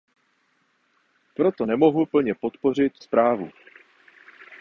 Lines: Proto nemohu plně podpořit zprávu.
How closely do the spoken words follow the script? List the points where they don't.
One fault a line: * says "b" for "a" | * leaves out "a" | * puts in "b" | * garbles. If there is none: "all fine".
all fine